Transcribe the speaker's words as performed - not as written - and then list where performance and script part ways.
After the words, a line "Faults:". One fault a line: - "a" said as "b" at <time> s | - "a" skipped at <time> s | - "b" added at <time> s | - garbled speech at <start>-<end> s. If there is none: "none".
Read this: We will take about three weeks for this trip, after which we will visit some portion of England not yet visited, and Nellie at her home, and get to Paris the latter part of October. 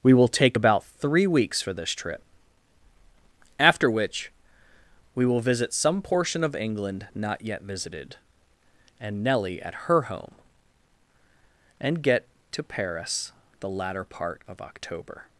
We will take about three weeks for this trip, after which we will visit some portion of England not yet visited, and Nellie at her home, and get to Paris the latter part of October.
Faults:
none